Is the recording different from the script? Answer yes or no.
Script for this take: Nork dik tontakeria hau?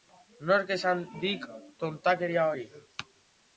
yes